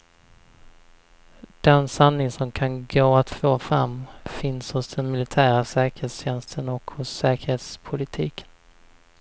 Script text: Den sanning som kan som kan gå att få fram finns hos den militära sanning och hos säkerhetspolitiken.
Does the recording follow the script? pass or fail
fail